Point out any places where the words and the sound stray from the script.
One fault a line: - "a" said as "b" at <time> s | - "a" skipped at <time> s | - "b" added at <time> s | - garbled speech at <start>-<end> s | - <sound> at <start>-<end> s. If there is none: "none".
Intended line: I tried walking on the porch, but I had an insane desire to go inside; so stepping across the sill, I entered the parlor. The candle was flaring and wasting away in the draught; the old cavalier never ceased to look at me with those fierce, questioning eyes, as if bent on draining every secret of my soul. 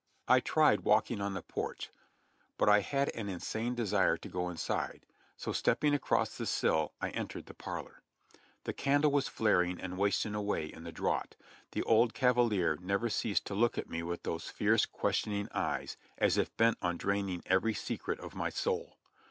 none